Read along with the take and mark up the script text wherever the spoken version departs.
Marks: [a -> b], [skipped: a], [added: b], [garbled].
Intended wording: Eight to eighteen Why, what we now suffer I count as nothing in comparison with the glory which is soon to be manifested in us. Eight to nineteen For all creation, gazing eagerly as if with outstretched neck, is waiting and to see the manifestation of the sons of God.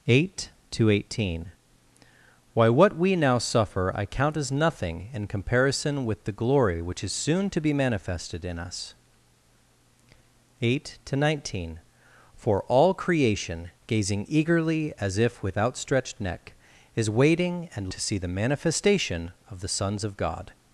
Eight to eighteen Why, what we now suffer I count as nothing in comparison with the glory which is soon to be manifested in us. Eight to nineteen For all creation, gazing eagerly as if with outstretched neck, is waiting and to see the manifestation of the sons of God.